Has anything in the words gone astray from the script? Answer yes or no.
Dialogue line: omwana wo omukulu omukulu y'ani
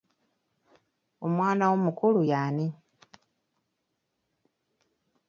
yes